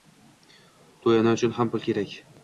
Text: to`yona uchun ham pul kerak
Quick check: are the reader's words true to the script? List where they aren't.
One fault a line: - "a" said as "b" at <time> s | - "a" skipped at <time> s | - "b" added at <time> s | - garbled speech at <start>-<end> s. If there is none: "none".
none